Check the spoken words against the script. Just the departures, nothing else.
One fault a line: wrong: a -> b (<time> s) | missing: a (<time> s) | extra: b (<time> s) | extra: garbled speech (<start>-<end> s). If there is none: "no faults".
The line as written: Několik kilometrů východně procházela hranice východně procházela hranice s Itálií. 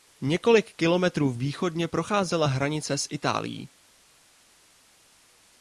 missing: východně procházela hranice (3.0 s)